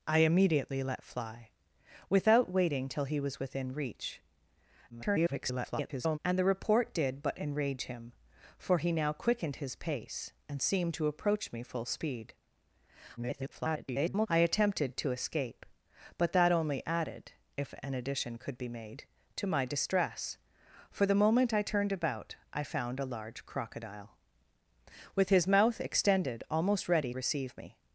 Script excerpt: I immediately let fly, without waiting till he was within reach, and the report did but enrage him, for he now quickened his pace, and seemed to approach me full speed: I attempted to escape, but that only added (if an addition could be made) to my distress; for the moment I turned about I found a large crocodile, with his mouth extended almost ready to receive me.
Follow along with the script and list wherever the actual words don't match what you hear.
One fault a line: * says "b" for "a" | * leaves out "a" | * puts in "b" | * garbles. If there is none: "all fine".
* garbles
* garbles
* leaves out "to"